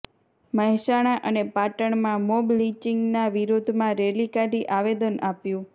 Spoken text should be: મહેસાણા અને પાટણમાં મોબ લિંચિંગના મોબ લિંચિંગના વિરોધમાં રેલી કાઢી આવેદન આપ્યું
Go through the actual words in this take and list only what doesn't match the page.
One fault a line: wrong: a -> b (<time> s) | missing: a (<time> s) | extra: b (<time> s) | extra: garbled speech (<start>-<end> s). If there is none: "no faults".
missing: મોબ લિંચિંગના (3.3 s)